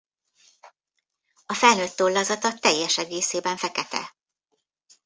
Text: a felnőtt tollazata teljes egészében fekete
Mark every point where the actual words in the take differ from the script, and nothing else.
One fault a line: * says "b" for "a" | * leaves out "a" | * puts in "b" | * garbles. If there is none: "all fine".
all fine